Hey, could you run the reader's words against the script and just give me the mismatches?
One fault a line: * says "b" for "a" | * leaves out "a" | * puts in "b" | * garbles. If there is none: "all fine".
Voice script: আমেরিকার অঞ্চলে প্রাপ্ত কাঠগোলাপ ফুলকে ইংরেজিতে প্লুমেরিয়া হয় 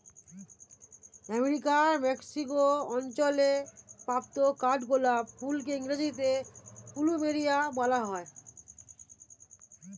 * puts in "মেক্সিকো"
* puts in "বলা"